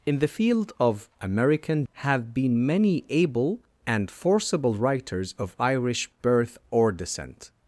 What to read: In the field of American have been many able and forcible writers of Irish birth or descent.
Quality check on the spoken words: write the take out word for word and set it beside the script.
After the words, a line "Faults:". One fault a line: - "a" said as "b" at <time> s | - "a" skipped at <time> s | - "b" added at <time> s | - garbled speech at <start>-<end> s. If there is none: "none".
In the field of American have been many able and forcible writers of Irish birth or descent.
Faults:
none